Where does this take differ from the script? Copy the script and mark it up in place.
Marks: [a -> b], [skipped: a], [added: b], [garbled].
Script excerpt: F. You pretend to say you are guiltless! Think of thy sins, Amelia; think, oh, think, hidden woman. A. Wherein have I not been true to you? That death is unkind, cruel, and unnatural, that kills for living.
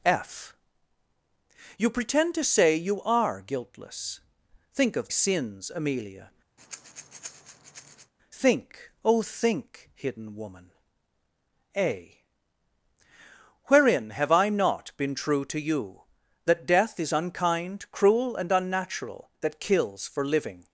F. You pretend to say you are guiltless! Think of [skipped: thy] sins, Amelia; think, oh, think, hidden woman. A. Wherein have I not been true to you? That death is unkind, cruel, and unnatural, that kills for living.